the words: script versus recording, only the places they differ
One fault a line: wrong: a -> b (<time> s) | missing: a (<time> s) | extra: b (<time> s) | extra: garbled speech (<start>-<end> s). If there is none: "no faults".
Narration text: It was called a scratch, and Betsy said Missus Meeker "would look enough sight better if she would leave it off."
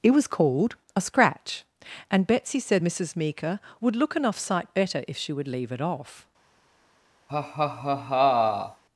no faults